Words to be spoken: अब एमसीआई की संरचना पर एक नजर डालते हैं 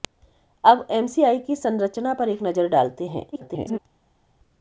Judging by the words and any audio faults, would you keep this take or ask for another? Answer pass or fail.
fail